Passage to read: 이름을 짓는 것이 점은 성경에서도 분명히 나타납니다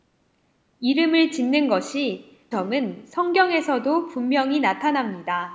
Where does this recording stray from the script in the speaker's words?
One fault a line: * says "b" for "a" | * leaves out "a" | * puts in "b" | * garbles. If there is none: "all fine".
all fine